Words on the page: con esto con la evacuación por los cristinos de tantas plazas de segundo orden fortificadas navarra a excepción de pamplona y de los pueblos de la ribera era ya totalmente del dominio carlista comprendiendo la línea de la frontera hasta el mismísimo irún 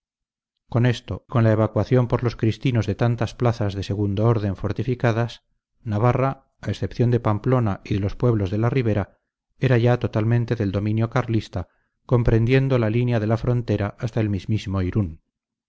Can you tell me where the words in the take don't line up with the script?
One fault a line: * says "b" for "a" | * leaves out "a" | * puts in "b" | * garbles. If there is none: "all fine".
all fine